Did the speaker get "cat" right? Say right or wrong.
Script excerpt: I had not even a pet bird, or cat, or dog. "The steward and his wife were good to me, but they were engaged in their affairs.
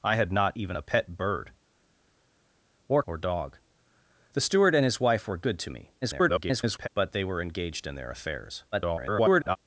wrong